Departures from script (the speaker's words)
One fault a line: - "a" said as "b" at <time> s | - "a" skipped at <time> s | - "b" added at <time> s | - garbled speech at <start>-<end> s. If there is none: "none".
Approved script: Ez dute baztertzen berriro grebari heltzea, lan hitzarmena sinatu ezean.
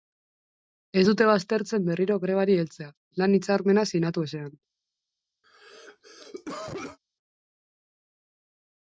none